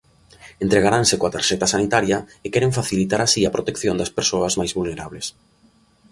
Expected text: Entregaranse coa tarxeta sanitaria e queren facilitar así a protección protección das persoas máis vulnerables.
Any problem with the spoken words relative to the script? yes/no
yes